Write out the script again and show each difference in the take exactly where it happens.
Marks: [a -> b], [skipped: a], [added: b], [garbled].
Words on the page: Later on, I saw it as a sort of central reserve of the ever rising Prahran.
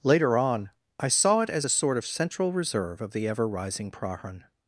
Later on, I saw it as a sort of central reserve of the ever rising Prahran.